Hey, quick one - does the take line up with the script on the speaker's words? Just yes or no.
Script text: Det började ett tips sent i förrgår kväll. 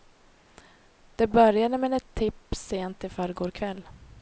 no